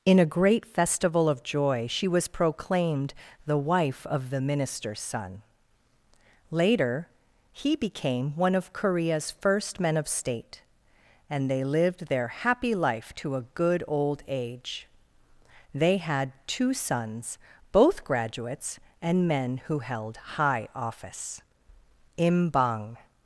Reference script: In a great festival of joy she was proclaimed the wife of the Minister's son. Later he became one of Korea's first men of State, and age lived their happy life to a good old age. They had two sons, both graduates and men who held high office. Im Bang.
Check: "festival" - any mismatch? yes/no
no